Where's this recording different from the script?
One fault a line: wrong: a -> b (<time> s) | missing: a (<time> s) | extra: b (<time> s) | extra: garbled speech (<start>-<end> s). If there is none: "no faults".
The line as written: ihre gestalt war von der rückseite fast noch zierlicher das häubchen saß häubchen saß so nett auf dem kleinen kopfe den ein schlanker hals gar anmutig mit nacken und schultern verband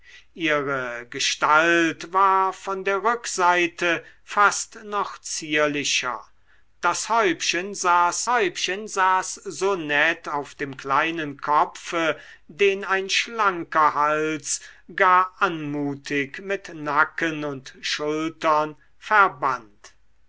no faults